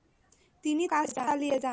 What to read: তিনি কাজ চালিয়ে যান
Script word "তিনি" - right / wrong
right